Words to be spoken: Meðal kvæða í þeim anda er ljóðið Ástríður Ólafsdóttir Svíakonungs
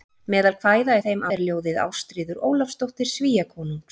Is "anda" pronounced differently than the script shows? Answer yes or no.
yes